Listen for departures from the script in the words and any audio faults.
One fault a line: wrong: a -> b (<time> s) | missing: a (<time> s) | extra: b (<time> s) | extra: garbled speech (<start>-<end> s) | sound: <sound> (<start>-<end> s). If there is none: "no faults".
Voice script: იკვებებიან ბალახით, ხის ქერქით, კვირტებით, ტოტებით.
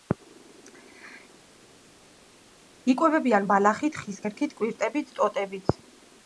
no faults